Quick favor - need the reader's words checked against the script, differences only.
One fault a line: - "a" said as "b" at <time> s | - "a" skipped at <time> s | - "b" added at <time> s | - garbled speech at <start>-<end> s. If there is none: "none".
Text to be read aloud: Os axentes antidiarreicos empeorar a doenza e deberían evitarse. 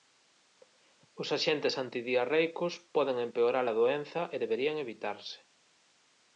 - "poden" added at 3.0 s